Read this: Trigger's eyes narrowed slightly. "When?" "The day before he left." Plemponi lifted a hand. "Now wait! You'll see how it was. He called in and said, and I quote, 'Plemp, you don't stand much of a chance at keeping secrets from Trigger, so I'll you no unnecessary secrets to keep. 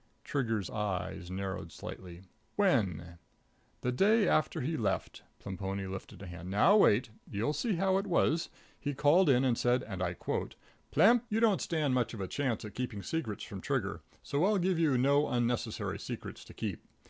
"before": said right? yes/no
no